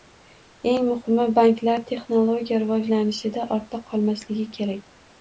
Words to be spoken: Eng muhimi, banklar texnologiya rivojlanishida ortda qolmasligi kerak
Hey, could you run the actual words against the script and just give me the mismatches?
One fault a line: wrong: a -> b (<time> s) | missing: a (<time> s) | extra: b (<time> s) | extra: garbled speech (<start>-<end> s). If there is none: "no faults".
no faults